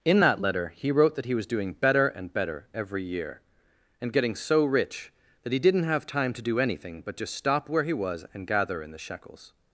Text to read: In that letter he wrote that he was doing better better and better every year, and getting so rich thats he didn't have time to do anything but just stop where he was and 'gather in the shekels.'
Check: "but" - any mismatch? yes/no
no